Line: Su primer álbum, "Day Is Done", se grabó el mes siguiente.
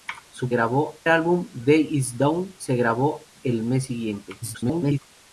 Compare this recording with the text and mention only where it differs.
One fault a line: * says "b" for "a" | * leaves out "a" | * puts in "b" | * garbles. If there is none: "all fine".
* says "grabó" for "primer"
* garbles